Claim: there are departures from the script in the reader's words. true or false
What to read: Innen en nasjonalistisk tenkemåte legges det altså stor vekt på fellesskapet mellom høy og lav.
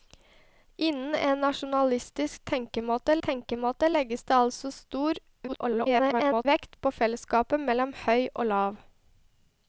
true